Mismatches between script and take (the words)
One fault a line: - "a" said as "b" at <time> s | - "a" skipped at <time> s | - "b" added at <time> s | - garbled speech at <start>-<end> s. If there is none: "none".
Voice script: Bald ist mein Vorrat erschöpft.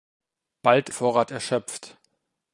- "ist mein" skipped at 0.9 s